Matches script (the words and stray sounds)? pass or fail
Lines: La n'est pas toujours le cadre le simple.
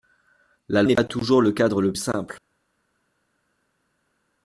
pass